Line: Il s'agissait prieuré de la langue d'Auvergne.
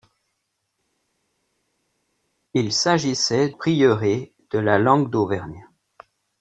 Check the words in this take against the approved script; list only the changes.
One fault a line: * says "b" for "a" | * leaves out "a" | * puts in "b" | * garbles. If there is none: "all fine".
all fine